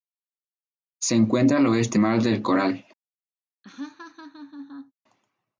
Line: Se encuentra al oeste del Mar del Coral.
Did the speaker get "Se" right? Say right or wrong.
right